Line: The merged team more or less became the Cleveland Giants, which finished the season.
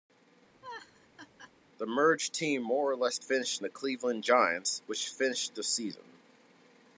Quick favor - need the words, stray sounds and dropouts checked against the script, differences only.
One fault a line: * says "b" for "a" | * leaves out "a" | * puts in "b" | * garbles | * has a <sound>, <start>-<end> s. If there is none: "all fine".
* has a laugh, 0.6-1.5 s
* says "finished" for "became"